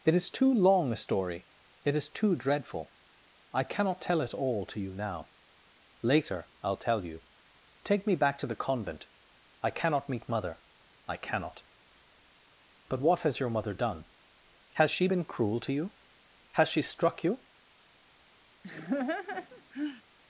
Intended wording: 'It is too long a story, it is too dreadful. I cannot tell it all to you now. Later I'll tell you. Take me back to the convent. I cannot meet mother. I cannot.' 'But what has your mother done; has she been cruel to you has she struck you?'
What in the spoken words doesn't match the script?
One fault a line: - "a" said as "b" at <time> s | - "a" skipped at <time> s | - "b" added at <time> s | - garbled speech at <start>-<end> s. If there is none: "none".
none